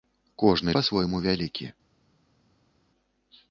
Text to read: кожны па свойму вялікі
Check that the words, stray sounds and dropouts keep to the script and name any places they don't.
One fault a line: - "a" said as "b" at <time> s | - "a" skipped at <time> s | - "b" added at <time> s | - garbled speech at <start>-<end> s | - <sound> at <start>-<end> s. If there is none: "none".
none